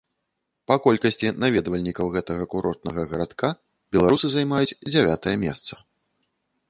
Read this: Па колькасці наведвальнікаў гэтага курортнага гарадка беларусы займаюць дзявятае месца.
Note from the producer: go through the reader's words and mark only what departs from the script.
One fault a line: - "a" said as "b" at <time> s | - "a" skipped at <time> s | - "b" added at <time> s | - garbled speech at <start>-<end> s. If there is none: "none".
none